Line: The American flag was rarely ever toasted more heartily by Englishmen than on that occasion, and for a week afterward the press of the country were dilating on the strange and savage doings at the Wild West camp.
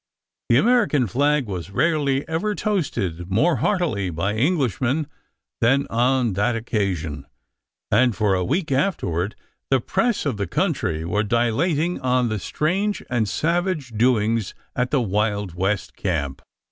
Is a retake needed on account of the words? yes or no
no